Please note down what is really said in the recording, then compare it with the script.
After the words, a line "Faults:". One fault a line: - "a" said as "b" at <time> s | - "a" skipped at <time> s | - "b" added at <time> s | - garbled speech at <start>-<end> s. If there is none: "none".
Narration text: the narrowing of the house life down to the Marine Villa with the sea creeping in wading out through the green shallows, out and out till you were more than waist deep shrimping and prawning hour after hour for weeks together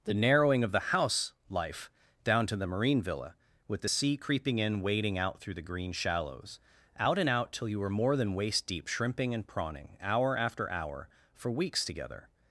the narrowing of the house life down to the Marine Villa with the sea creeping in wading out through the green shallows, out and out till you were more than waist deep shrimping and prawning hour after hour for weeks together
Faults:
none